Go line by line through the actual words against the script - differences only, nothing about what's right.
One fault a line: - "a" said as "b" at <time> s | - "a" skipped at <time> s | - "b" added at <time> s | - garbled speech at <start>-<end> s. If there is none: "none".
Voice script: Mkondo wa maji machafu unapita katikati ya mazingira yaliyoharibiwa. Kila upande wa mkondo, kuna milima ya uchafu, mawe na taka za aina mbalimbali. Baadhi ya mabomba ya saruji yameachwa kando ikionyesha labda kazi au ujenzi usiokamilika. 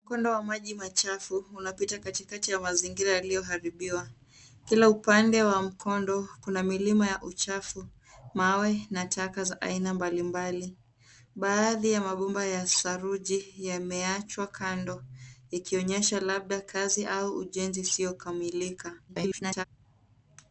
- garbled speech at 19.1-19.6 s